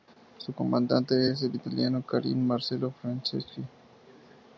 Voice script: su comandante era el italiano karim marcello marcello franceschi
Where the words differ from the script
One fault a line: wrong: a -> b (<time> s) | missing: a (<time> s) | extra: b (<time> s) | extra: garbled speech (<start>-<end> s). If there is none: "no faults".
wrong: era -> es (1.3 s)
missing: marcello (2.9 s)